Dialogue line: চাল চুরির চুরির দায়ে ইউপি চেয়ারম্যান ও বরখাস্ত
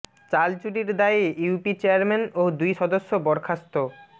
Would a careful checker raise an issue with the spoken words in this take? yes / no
yes